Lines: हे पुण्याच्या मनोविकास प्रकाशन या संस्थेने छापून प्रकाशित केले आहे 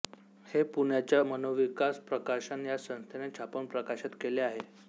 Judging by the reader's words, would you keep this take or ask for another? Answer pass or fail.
pass